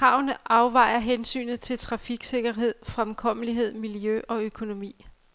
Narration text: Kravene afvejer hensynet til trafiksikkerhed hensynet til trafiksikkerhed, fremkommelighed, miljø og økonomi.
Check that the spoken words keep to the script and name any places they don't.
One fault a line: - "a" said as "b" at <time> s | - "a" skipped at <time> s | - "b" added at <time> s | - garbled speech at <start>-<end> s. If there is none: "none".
- "hensynet til trafiksikkerhed" skipped at 2.7 s